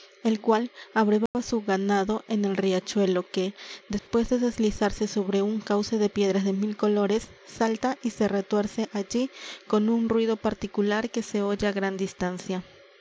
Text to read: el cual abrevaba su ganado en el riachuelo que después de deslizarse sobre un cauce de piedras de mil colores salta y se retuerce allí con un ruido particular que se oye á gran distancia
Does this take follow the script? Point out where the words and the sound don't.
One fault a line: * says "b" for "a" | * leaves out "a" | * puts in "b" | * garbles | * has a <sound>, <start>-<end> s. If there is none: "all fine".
* has a dropout, 1.3-1.3 s
* has a dropout, 4.0-4.1 s